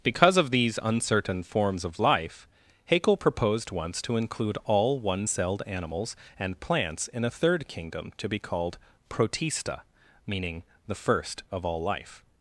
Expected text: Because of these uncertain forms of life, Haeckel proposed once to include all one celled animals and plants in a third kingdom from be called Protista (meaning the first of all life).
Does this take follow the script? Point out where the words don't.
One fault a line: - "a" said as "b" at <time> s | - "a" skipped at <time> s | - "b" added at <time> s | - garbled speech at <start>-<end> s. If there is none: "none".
- "from" said as "to" at 8.2 s